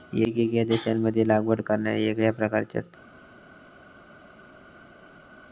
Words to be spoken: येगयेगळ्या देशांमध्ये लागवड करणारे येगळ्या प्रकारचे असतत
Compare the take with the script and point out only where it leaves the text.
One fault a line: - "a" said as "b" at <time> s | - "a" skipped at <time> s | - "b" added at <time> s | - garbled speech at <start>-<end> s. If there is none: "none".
none